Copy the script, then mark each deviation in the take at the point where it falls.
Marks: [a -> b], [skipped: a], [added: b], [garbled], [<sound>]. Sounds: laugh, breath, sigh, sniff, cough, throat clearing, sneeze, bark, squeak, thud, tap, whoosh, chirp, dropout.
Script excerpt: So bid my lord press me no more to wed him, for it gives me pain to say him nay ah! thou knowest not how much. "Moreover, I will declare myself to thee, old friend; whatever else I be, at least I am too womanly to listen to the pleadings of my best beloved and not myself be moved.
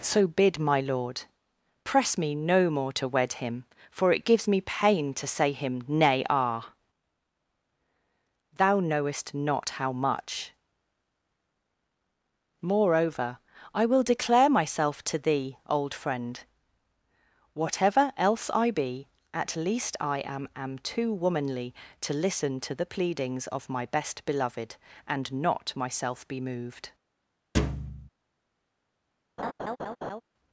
So bid my lord press me no more to wed him, for it gives me pain to say him nay ah! thou knowest not how much. "Moreover, I will declare myself to thee, old friend; whatever else I be, at least I am [added: am] too womanly to listen to the pleadings of my best beloved and not myself be moved. [thud] [laugh]